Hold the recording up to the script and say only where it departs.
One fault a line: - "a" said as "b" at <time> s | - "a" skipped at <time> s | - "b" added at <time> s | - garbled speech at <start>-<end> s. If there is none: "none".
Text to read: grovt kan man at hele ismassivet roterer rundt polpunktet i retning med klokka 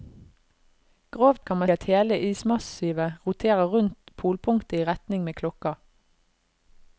none